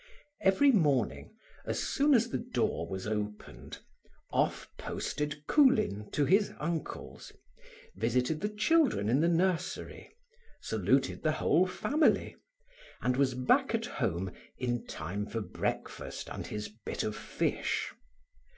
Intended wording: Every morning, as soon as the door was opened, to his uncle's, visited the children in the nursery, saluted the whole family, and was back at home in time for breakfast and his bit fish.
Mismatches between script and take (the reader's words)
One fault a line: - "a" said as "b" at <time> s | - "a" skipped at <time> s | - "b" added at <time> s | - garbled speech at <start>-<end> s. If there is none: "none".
- "off posted Coolin" added at 4.3 s
- "of" added at 17.0 s